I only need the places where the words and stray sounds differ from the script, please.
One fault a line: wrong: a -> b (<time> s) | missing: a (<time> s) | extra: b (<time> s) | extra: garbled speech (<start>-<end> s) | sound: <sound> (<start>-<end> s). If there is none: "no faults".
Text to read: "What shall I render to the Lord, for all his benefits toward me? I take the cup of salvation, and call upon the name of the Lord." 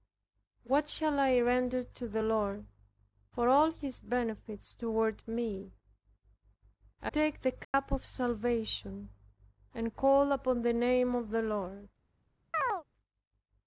sound: dropout (7.6-7.7 s)
sound: chirp (12.5-12.8 s)